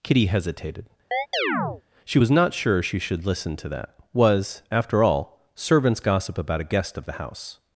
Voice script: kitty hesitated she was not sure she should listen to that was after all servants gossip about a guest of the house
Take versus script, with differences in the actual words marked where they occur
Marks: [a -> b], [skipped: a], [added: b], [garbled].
kitty hesitated she was not sure she should listen to that was after all servants gossip about a guest of the house